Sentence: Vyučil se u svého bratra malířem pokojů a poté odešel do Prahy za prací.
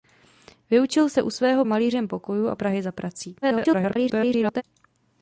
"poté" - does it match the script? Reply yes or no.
no